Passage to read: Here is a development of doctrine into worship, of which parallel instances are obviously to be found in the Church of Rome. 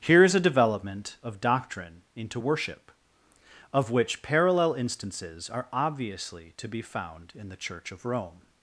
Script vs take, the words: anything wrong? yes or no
no